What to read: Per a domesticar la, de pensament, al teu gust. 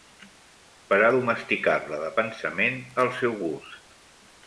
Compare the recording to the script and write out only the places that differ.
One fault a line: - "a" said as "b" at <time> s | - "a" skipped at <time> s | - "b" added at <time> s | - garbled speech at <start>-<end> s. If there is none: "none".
- "teu" said as "seu" at 3.2 s